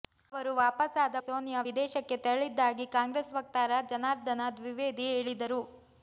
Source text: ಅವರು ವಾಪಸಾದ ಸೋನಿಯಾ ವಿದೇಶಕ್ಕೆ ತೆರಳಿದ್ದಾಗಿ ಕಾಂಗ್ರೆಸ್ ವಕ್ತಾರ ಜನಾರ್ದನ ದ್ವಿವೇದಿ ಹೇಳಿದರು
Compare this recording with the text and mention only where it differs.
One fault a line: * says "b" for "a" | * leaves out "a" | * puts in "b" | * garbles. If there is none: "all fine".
all fine